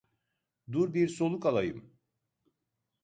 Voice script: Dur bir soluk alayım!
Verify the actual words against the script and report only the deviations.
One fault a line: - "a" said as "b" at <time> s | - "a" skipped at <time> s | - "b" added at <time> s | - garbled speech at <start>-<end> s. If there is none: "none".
none